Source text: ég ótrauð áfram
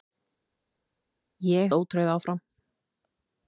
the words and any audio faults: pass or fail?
pass